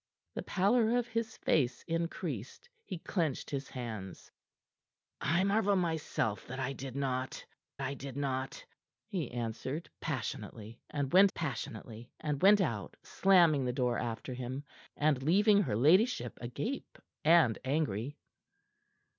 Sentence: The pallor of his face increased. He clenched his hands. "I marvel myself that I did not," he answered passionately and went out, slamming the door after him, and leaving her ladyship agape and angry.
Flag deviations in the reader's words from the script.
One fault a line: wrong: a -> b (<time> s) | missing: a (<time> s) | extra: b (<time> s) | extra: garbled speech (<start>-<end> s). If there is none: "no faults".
extra: I did not (7.8 s)
extra: passionately and went (11.3 s)